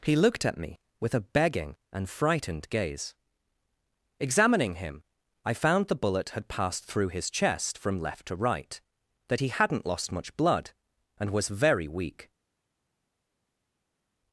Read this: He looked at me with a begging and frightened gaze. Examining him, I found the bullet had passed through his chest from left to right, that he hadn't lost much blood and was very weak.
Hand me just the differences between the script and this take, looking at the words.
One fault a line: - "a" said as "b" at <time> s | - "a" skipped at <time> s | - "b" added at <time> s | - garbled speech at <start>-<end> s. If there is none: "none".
none